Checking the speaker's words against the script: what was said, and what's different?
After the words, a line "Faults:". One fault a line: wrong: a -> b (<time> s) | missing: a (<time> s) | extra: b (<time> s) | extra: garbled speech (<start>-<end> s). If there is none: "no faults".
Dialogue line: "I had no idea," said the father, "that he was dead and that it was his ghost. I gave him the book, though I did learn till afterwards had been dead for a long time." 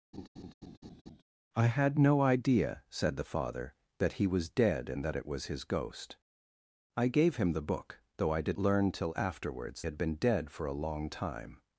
"I had no idea," said the father, "that he was dead and that it was his ghost. I gave him the book, though I did learn till afterwards had been dead for a long time."
Faults:
no faults